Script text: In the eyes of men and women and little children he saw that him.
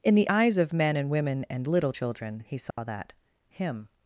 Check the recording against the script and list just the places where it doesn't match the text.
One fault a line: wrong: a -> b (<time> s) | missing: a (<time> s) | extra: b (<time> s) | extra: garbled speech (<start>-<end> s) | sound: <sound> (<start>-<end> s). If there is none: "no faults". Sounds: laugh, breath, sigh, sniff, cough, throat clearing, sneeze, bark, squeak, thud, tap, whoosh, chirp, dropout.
sound: dropout (2.7-2.8 s)